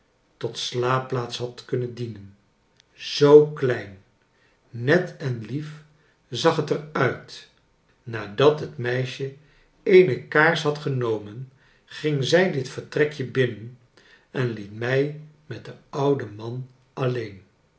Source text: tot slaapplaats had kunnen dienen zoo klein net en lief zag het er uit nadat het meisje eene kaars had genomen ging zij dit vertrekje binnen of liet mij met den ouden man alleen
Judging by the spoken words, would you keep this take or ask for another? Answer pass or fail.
fail